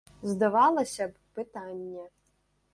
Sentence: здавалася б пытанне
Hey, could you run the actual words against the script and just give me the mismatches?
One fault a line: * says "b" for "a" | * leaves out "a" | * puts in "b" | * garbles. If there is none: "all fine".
all fine